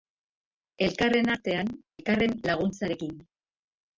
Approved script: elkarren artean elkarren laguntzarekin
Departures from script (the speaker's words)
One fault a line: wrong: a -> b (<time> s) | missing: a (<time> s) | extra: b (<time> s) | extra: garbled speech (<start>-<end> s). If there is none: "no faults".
no faults